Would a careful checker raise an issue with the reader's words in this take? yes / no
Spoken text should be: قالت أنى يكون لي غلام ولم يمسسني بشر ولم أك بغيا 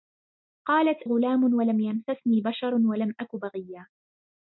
yes